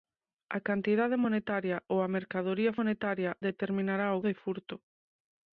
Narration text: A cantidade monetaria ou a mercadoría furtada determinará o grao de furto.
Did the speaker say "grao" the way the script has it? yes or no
no